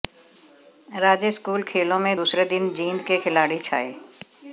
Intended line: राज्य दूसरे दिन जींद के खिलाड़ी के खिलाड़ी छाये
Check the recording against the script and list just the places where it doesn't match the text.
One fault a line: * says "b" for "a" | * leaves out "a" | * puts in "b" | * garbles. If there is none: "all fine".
* puts in "स्कूल खेलों में"
* leaves out "के खिलाड़ी"